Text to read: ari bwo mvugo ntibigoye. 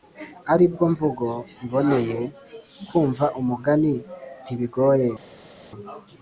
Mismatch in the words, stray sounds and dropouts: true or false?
true